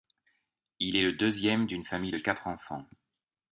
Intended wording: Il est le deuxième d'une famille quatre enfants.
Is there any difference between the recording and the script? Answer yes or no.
yes